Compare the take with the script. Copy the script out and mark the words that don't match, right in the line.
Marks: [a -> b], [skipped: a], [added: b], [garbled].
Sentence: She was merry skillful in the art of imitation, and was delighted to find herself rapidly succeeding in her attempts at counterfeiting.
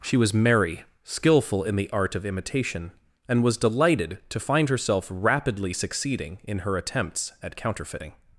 She was merry skillful in the art of imitation, and was delighted to find herself rapidly succeeding in her attempts at counterfeiting.